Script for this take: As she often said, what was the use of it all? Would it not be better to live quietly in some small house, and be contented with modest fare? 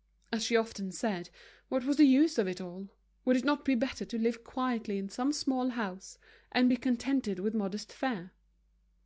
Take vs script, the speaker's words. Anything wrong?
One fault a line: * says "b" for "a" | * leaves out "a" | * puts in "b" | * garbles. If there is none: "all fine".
all fine